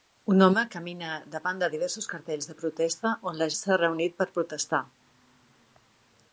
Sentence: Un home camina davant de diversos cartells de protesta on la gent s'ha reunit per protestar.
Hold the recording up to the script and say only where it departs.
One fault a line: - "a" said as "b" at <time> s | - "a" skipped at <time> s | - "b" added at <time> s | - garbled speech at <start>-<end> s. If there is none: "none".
- "gent" skipped at 3.5 s